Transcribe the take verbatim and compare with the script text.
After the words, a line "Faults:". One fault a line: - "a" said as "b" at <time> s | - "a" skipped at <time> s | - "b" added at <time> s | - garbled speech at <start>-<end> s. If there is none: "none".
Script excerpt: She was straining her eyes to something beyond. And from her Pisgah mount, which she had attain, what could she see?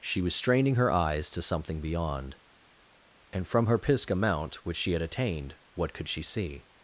She was straining her eyes to something beyond. And from her Pisgah mount, which she had attained, what could she see?
Faults:
- "attain" said as "attained" at 5.0 s